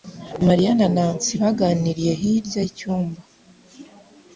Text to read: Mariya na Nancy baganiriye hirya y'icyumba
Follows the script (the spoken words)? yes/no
yes